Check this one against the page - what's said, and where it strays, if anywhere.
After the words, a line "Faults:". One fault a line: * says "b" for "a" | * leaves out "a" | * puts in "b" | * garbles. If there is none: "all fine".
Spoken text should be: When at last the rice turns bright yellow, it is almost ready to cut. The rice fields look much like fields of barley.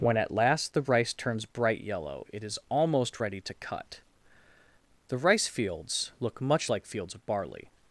When at last the rice turns bright yellow, it is almost ready to cut. The rice fields look much like fields of barley.
Faults:
all fine